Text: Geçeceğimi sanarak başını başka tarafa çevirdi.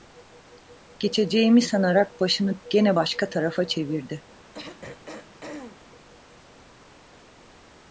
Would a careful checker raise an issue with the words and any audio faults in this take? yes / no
yes